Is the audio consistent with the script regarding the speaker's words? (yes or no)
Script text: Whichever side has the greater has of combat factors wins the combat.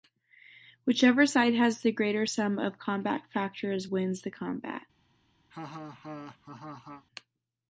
no